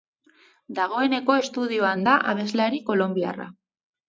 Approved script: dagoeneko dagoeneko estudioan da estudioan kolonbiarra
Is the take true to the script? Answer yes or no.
no